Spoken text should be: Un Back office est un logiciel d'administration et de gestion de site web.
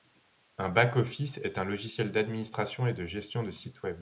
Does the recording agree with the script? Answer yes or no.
yes